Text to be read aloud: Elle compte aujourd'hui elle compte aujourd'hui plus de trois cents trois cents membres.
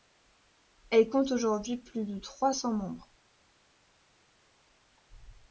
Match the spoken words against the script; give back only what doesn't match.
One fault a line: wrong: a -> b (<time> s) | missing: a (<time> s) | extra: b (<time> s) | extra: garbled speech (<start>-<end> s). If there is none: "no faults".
missing: elle compte aujourd'hui (1.8 s)
missing: trois cents (2.7 s)